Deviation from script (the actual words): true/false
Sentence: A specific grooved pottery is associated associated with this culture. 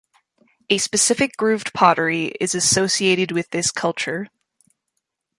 true